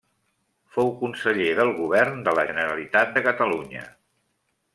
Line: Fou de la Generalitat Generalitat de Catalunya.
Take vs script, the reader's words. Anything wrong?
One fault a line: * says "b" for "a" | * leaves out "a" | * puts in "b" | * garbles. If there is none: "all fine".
* puts in "conseller del govern"
* leaves out "Generalitat"